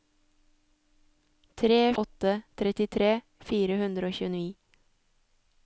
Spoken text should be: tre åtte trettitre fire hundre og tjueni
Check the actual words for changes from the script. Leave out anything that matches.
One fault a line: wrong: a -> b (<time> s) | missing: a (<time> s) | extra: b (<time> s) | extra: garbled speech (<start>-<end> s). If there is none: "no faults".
no faults